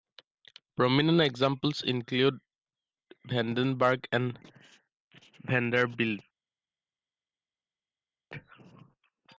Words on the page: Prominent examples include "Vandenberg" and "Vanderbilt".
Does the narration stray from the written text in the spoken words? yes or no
no